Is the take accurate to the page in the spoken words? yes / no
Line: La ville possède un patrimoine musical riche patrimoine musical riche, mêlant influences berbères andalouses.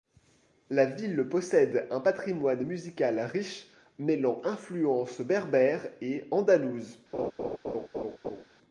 no